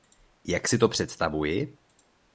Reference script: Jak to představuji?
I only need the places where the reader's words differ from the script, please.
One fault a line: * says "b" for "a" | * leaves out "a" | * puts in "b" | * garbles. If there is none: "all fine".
* puts in "si"